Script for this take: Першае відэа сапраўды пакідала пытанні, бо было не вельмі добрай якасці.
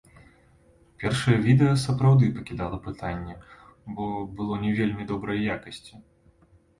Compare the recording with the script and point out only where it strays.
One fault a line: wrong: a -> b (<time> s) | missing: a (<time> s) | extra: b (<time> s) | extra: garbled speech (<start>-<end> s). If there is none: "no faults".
no faults